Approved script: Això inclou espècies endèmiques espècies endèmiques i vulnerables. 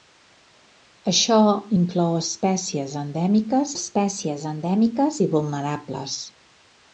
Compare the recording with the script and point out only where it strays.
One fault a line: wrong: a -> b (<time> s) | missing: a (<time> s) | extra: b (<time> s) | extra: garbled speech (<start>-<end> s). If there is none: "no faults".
no faults